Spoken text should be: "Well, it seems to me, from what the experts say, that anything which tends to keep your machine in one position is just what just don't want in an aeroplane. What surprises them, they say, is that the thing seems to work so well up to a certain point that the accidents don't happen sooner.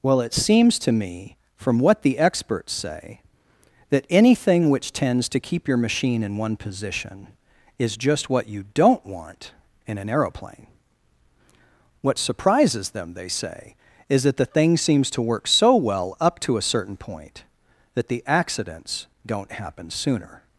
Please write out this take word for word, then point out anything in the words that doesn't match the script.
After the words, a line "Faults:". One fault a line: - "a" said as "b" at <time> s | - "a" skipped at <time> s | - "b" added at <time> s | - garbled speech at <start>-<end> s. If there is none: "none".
"Well, it seems to me, from what the experts say, that anything which tends to keep your machine in one position is just what you don't want in an aeroplane. What surprises them, they say, is that the thing seems to work so well up to a certain point that the accidents don't happen sooner.
Faults:
- "just" said as "you" at 8.5 s